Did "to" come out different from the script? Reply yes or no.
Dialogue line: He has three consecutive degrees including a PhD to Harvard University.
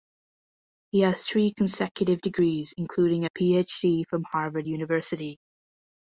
yes